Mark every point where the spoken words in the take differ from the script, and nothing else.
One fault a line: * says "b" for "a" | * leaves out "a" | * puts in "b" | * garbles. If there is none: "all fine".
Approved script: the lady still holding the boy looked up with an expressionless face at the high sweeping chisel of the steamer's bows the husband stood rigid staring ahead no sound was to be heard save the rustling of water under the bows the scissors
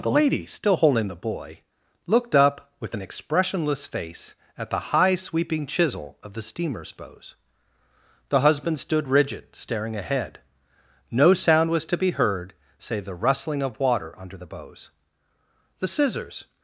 all fine